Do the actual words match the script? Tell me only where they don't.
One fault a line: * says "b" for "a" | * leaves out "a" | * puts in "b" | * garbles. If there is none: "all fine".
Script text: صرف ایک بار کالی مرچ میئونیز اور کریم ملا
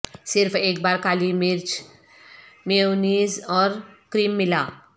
all fine